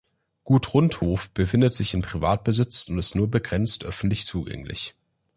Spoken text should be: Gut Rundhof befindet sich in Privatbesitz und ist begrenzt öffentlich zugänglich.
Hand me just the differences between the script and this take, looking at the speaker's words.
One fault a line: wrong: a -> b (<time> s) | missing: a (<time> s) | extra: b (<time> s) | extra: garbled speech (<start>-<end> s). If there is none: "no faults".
extra: nur (3.1 s)